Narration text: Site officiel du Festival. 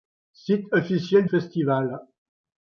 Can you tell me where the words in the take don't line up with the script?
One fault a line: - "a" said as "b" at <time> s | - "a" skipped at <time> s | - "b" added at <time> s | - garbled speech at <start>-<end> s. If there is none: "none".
- "du" skipped at 1.3 s